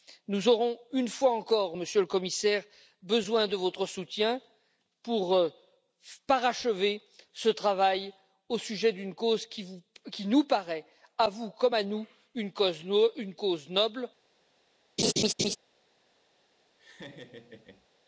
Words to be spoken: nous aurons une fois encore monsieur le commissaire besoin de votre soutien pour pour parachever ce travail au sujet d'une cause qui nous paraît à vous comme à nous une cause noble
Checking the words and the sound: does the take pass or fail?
fail